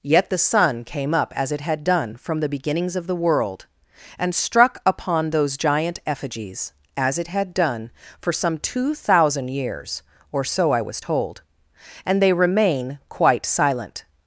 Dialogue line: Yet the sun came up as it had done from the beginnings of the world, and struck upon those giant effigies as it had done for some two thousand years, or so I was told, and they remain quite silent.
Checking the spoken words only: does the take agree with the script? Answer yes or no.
yes